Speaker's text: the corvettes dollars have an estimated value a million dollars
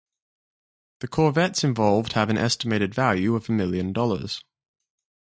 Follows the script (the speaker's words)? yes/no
no